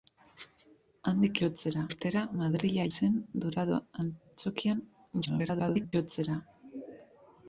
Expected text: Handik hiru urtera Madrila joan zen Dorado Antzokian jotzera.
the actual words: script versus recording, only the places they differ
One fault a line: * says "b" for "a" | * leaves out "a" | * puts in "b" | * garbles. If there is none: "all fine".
* says "jotzera" for "hiru"
* leaves out "joan"
* garbles